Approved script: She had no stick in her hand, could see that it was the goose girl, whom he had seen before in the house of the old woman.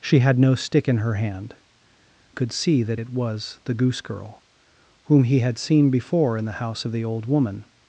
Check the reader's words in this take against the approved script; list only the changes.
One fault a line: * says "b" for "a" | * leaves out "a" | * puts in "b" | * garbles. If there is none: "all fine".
all fine